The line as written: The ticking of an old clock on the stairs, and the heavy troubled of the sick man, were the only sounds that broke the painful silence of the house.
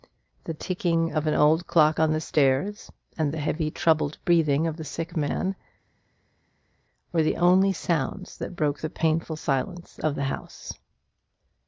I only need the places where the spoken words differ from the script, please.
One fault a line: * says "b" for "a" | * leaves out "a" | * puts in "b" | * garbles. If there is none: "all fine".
* puts in "breathing"